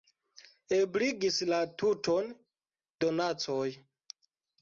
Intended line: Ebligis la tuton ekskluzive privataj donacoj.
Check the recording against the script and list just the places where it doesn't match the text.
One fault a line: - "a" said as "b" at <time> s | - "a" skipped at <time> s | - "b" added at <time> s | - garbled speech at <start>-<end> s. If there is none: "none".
- "ekskluzive privataj" skipped at 2.3 s